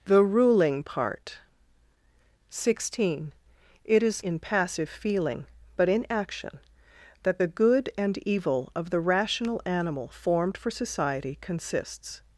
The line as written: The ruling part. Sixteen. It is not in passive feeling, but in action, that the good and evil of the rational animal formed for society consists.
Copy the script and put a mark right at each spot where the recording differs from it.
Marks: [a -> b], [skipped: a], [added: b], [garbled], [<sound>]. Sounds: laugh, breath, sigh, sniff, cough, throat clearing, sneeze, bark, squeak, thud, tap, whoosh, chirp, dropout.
The ruling part. Sixteen. It is [skipped: not] in passive feeling, but in action, that the good and evil of the rational animal formed for society consists.